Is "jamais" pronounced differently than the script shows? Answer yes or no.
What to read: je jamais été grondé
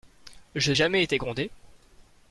no